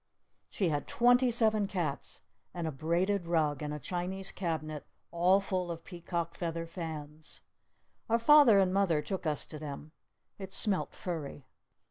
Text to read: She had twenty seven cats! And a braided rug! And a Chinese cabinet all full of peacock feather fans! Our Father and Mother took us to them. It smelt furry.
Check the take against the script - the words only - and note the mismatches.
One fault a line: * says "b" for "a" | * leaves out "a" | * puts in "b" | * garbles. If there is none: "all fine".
all fine